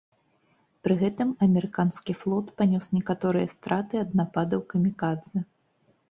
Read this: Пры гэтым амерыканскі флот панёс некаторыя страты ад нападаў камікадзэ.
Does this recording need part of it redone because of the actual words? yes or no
no